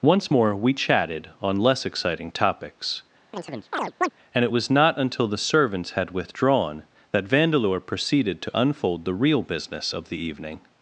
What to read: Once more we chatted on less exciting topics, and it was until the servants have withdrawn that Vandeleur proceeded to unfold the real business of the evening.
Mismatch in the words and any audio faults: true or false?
true